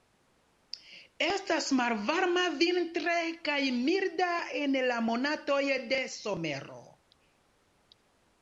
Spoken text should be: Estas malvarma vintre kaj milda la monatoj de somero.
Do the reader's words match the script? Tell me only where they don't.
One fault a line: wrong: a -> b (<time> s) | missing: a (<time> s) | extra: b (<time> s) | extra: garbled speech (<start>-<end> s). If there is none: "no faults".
extra: en (4.6 s)